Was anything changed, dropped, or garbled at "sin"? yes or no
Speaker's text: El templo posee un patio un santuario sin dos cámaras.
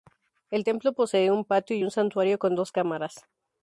yes